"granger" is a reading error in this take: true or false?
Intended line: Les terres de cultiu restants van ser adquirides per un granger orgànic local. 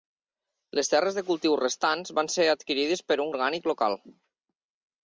true